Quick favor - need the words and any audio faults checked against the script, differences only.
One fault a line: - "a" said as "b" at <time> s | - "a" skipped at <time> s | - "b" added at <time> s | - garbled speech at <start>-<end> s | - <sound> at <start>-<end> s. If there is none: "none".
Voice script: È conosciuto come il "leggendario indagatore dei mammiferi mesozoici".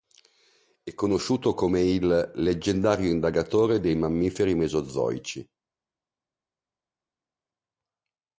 none